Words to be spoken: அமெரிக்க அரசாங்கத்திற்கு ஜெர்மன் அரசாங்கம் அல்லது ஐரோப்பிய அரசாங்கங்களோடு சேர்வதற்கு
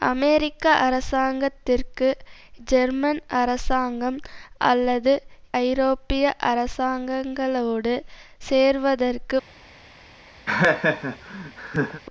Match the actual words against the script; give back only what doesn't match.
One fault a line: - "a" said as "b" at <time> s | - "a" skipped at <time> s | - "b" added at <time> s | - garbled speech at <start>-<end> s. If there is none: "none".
none